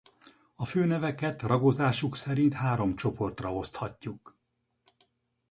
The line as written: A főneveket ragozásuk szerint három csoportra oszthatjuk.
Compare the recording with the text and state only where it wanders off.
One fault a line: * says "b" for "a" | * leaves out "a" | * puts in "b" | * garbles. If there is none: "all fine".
all fine